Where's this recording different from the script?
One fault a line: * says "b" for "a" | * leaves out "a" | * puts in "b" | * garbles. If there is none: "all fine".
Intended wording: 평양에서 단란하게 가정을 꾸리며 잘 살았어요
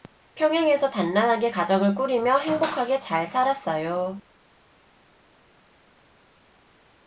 * puts in "행복하게"